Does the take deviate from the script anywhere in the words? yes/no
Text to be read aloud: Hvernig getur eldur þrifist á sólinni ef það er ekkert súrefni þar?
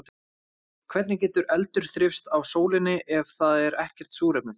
no